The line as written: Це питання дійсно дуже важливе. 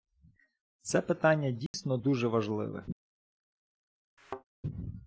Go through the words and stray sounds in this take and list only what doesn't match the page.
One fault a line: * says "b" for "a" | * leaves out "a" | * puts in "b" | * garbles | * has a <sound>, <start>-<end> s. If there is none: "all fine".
* has a dropout, 1.7-1.7 s
* has a thud, 4.2-4.4 s